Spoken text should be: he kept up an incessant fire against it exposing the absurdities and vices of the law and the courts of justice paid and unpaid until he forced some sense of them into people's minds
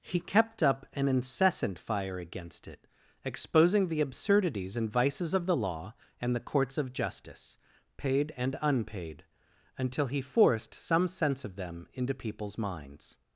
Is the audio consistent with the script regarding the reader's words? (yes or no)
yes